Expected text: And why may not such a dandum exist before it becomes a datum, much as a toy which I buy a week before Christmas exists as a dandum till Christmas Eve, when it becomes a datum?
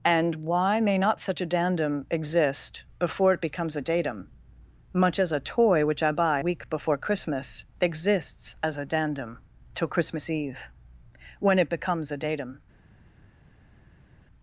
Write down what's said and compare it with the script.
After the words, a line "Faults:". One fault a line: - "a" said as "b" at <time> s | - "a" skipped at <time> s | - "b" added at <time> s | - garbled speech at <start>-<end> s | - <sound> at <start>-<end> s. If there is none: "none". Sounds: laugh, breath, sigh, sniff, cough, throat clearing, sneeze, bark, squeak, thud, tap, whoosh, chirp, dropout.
And why may not such a dandum exist before it becomes a datum, much as a toy which I buy week before Christmas exists as a dandum till Christmas Eve, when it becomes a datum?
Faults:
- "a" skipped at 6.4 s